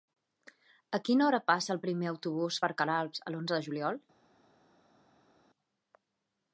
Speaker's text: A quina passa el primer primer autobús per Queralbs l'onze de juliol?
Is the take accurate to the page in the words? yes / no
no